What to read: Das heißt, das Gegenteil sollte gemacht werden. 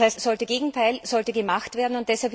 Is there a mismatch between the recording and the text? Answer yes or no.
yes